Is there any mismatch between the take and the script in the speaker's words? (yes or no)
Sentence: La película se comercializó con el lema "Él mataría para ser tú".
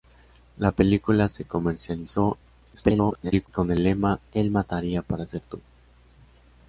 yes